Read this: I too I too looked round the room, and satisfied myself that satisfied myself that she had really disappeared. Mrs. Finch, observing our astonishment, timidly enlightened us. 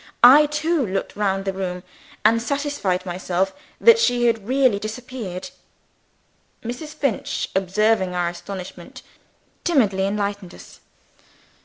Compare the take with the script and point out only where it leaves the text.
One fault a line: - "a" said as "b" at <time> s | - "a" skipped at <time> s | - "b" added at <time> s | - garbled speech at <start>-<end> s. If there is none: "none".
- "I too" skipped at 0.8 s
- "satisfied myself that" skipped at 4.0 s